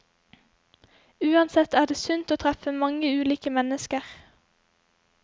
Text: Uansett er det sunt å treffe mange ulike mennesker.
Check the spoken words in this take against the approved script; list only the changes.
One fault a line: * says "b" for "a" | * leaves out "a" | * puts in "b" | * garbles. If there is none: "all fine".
all fine